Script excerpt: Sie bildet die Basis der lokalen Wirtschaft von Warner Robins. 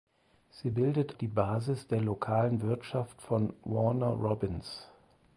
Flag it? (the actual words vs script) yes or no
no